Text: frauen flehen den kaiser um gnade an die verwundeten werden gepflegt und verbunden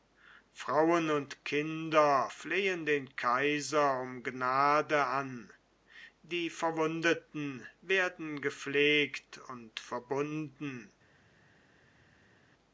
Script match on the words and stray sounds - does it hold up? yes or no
no